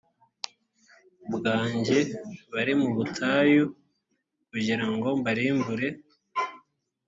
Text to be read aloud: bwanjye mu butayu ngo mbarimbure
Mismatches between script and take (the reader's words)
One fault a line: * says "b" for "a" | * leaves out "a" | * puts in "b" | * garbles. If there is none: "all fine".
* puts in "bari"
* puts in "kugira"